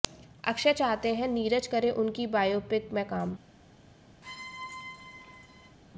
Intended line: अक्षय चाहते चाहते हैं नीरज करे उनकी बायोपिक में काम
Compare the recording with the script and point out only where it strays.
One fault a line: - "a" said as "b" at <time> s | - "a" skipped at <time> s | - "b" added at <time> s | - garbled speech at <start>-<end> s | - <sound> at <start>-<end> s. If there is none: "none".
- "चाहते" skipped at 1.1 s
- squeak at 4.2-5.8 s